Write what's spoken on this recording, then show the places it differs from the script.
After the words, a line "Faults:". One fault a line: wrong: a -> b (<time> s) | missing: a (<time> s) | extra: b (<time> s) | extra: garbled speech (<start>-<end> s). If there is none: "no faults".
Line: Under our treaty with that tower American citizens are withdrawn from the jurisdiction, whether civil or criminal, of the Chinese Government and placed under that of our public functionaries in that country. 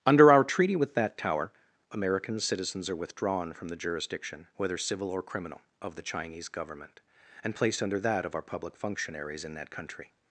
Under our treaty with that tower American citizens are withdrawn from the jurisdiction, whether civil or criminal, of the Chinese Government and placed under that of our public functionaries in that country.
Faults:
no faults